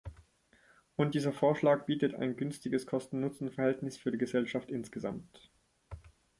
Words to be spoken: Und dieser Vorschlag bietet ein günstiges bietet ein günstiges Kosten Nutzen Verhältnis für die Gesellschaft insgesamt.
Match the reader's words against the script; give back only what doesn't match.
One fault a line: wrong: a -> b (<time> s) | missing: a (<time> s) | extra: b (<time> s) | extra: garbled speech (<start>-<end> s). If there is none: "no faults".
missing: bietet ein günstiges (2.9 s)